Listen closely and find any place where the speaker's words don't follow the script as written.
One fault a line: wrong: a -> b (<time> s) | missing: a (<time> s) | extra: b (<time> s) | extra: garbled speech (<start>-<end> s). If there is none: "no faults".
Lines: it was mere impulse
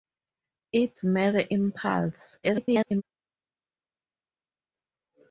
missing: was (1.0 s)
extra: garbled speech (2.4-3.0 s)